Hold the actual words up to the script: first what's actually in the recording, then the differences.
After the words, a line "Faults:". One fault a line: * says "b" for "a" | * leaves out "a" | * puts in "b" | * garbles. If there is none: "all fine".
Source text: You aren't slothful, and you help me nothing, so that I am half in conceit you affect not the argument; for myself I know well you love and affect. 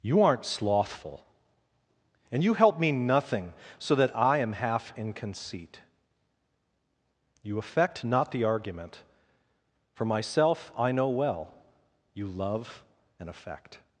You aren't slothful, and you help me nothing, so that I am half in conceit you affect not the argument; for myself I know well you love and affect.
Faults:
all fine